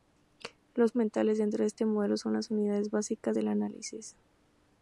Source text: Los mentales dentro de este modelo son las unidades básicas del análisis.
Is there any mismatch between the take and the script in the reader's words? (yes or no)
no